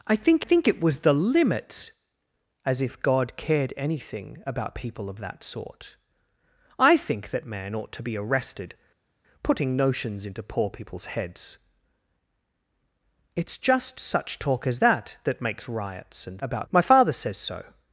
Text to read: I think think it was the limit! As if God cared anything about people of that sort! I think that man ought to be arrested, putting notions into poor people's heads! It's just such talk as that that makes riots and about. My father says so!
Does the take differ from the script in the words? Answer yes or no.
no